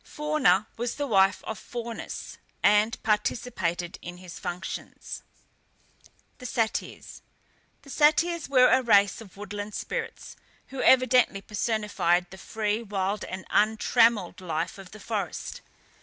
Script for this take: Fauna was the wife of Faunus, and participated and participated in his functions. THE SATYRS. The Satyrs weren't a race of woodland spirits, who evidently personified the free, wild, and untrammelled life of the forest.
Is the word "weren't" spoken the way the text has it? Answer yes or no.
no